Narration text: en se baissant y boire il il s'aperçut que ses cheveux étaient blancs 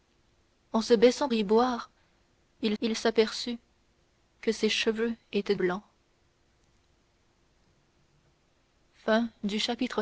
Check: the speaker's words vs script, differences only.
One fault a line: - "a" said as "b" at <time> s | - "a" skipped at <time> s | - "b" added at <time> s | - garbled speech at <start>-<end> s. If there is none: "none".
none